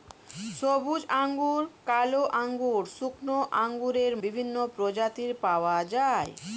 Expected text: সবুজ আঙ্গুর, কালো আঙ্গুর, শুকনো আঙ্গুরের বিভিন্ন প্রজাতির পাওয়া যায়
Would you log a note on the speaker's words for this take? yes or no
no